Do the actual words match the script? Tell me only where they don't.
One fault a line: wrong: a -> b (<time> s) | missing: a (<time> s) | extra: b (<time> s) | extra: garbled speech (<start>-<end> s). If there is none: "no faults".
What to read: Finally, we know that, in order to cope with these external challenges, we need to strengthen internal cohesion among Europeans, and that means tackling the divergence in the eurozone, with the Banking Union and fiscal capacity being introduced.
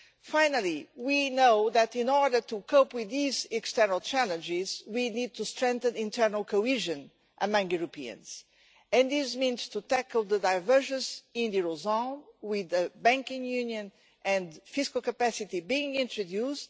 wrong: that -> this (9.1 s)